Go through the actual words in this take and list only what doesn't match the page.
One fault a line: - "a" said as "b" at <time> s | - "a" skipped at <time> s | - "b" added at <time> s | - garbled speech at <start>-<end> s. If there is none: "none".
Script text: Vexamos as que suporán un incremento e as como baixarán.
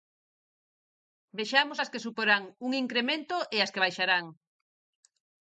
- "como" said as "que" at 3.7 s